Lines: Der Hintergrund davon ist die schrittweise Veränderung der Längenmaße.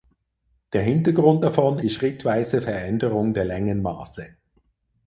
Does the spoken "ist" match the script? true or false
false